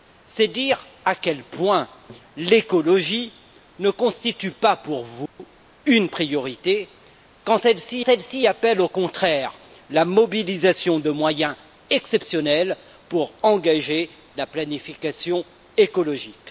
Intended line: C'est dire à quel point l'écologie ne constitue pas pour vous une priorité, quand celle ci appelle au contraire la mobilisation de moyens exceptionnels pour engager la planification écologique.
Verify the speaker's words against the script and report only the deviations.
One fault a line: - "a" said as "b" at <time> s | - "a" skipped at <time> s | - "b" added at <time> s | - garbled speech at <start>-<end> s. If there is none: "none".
- "celle ci" added at 8.0 s